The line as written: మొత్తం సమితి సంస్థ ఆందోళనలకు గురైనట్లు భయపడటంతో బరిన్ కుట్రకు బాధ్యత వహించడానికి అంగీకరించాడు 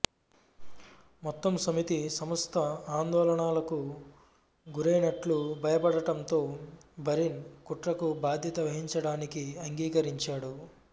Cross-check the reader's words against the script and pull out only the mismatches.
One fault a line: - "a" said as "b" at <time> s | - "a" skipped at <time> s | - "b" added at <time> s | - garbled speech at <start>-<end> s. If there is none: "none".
none